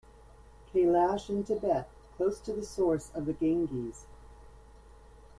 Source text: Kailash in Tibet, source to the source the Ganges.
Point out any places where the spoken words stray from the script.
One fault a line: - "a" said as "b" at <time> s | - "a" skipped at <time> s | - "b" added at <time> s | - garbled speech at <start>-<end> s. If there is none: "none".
- "source" said as "close" at 2.2 s
- "of" added at 3.1 s